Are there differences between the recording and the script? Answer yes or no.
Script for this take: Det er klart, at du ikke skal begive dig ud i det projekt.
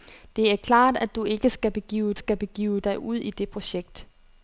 yes